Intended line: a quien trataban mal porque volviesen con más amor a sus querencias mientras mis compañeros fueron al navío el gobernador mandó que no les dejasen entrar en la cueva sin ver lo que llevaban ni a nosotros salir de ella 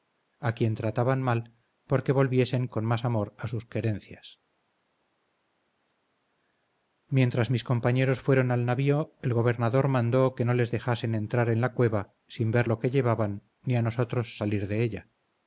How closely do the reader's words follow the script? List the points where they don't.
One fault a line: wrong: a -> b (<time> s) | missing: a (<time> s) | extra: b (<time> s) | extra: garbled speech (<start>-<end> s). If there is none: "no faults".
no faults